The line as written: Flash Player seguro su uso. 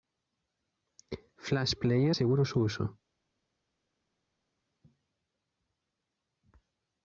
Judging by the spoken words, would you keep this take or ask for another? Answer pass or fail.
pass